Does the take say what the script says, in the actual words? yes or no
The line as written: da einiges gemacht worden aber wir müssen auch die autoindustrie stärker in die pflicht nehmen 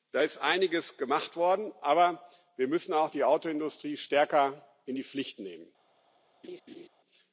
no